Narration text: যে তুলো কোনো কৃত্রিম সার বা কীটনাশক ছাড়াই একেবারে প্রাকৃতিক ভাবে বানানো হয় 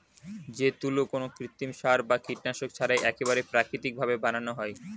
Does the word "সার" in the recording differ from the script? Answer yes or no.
no